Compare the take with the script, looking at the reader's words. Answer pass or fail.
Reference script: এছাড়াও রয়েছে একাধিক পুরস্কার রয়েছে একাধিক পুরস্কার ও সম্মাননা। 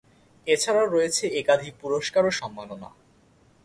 fail